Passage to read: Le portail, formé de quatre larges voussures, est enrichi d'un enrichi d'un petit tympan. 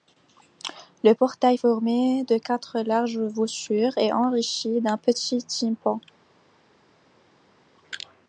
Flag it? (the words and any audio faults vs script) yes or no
yes